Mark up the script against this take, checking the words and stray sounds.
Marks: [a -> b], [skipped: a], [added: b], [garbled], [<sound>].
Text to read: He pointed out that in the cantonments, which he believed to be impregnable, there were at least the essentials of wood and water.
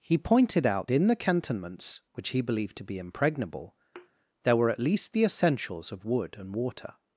He pointed out [skipped: that] in the cantonments, which he believed to be impregnable, [thud] there were at least the essentials of wood and water.